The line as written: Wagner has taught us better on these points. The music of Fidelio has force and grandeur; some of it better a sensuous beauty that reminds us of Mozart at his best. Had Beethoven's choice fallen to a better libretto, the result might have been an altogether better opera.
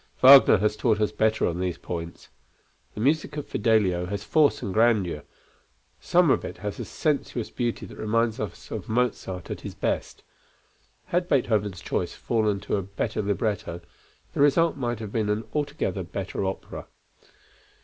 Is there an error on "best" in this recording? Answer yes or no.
no